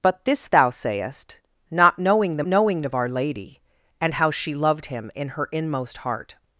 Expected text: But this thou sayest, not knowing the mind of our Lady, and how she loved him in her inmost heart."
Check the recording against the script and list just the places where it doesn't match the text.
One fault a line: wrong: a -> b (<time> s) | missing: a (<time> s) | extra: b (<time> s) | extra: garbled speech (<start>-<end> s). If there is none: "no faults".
wrong: mind -> knowing (2.5 s)